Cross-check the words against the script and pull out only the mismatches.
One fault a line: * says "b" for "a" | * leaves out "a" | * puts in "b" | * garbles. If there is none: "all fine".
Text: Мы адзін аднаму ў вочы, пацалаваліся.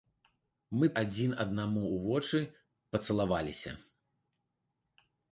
all fine